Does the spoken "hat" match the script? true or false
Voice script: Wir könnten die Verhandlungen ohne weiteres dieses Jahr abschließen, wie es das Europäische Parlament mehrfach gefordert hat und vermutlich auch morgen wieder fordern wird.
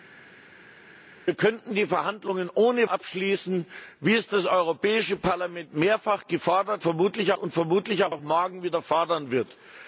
false